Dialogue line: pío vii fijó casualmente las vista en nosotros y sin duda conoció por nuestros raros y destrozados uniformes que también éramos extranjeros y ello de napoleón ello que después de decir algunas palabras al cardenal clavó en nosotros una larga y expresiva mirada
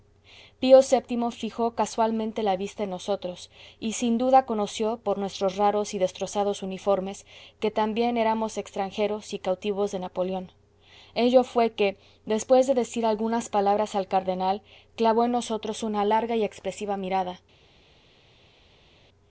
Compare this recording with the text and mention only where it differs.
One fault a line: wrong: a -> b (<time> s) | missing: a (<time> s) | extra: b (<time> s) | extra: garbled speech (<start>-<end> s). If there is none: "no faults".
wrong: las -> la (2.4 s)
wrong: ello -> cautivos (9.4 s)
extra: fué (11.4 s)